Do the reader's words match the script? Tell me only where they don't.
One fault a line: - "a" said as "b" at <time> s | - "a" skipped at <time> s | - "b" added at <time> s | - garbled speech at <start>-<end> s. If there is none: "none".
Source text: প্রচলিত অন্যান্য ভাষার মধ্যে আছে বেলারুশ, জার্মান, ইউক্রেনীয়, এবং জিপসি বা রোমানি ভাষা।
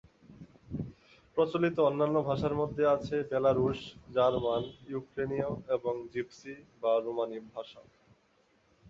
none